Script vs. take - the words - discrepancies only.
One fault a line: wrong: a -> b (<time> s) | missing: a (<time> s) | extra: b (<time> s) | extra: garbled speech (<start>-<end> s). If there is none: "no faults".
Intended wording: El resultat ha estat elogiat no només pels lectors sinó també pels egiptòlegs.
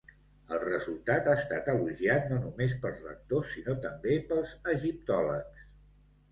no faults